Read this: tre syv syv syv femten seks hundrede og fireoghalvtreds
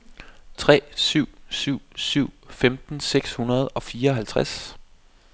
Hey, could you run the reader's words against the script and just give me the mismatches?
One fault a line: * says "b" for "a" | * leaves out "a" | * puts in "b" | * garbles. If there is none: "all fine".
all fine